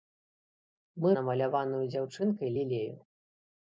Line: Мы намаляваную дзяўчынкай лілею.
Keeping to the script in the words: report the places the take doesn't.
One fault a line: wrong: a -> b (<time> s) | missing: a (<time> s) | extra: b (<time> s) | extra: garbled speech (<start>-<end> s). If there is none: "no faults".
no faults